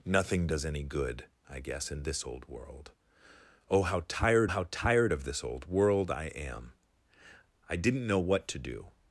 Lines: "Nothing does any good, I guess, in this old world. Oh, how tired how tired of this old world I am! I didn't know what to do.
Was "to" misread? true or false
false